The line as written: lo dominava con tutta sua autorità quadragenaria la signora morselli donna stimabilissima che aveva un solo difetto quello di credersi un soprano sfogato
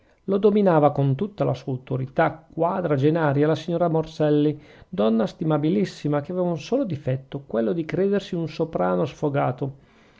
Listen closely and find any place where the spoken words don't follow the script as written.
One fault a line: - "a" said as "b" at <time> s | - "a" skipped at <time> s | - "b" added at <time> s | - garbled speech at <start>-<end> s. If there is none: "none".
- "la" added at 1.4 s